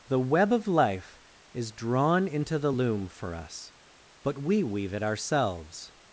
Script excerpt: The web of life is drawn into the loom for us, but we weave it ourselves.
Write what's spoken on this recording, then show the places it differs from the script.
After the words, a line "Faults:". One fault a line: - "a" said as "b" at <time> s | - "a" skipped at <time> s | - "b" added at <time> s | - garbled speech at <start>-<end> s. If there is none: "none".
The web of life is drawn into the loom for us, but we weave it ourselves.
Faults:
none